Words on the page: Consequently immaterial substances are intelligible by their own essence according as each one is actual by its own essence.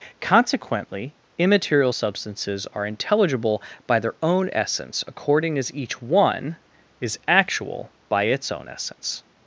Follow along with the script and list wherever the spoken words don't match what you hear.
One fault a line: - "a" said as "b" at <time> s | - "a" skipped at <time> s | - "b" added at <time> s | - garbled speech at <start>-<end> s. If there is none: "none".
none